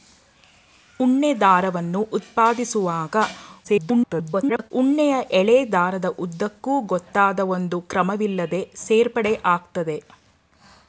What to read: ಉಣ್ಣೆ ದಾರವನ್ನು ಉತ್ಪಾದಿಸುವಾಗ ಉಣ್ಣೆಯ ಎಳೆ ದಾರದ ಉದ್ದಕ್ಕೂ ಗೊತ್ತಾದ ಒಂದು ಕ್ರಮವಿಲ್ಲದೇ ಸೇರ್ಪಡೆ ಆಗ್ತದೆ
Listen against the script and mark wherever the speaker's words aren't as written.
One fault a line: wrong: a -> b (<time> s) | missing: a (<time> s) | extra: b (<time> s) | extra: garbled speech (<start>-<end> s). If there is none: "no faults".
extra: garbled speech (3.6-4.7 s)